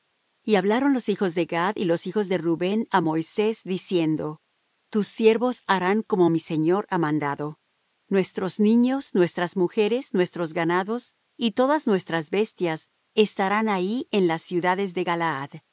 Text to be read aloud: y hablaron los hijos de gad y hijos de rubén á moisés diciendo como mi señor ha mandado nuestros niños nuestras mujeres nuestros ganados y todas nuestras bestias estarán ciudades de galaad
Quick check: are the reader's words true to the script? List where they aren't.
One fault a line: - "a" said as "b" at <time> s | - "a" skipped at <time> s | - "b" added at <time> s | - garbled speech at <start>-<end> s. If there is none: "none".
- "los" added at 1.9 s
- "tus siervos harán" added at 4.9 s
- "ahí en las" added at 13.7 s